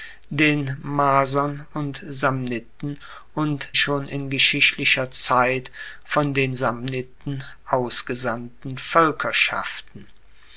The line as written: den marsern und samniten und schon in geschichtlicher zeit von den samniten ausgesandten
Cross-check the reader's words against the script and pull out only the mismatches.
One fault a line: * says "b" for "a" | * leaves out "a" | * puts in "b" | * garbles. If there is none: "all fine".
all fine